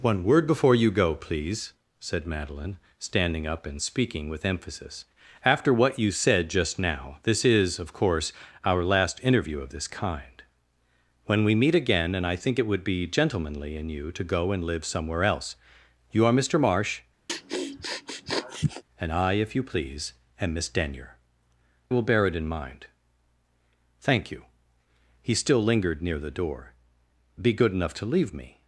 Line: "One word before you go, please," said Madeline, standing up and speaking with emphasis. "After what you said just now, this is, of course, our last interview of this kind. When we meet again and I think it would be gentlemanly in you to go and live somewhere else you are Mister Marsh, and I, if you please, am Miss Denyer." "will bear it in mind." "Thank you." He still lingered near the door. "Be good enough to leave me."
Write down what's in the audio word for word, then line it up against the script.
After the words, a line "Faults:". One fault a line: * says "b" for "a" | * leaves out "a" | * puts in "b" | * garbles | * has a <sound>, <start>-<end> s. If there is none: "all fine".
"One word before you go, please," said Madeline, standing up and speaking with emphasis. "After what you said just now, this is, of course, our last interview of this kind. When we meet again and I think it would be gentlemanly in you to go and live somewhere else you are Mister Marsh, and I, if you please, am Miss Denyer." "will bear it in mind." "Thank you." He still lingered near the door. "Be good enough to leave me."
Faults:
* has a sniff, 17.3-18.8 s